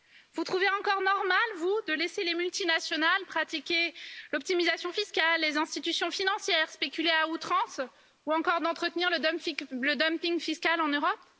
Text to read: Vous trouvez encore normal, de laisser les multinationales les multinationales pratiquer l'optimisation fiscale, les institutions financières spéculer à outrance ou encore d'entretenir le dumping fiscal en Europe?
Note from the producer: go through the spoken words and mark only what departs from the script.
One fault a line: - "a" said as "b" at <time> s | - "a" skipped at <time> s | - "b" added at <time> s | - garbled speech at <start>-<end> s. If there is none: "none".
- "vous" added at 1.6 s
- "les multinationales" skipped at 3.2 s